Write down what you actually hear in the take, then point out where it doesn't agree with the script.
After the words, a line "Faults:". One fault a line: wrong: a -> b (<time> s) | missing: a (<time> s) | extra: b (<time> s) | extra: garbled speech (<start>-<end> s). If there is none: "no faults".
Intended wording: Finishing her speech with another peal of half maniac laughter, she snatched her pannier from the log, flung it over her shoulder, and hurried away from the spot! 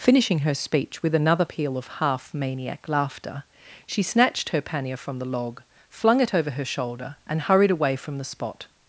Finishing her speech with another peal of half maniac laughter, she snatched her pannier from the log, flung it over her shoulder, and hurried away from the spot!
Faults:
no faults